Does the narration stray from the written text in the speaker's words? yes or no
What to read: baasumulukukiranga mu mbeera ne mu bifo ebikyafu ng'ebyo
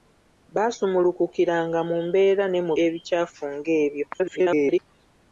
yes